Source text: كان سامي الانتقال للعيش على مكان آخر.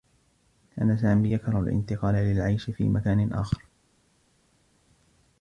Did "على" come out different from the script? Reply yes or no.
yes